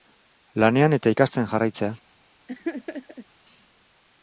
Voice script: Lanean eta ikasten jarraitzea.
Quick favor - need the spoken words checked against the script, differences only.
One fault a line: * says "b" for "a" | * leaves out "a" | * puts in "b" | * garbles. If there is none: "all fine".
all fine